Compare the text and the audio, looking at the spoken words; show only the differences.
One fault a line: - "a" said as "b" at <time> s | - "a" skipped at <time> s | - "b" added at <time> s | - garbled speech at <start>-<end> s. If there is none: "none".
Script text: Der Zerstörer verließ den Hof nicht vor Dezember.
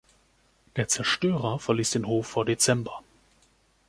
- "nicht" skipped at 2.3 s